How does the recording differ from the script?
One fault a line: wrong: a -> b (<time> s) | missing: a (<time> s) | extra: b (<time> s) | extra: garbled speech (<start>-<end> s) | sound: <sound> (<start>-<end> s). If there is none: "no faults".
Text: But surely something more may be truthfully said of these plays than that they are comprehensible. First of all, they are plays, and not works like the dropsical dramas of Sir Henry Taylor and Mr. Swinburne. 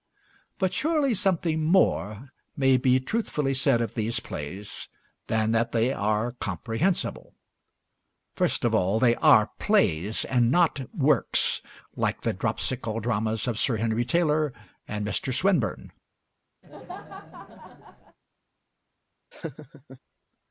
sound: laugh (16.6-18.2 s)
sound: laugh (19.3-20.0 s)